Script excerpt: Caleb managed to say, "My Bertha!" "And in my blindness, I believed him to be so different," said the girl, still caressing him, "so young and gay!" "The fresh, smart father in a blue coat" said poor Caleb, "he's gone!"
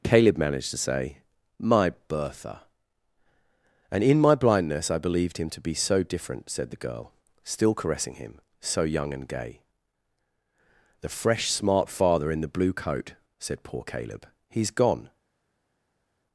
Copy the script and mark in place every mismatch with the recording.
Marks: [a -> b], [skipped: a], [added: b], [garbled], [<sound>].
Caleb managed to say, "My Bertha!" "And in my blindness, I believed him to be so different," said the girl, still caressing him, "so young and gay!" "The fresh, smart father in [a -> the] blue coat" said poor Caleb, "he's gone!"